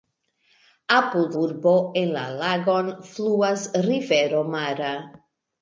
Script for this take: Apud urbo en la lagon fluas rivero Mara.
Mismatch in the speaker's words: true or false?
false